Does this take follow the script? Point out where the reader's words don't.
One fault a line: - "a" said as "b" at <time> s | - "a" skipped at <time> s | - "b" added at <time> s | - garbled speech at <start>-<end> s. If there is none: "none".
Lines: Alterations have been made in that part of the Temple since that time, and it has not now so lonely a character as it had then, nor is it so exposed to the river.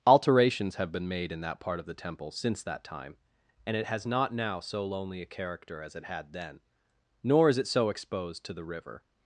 none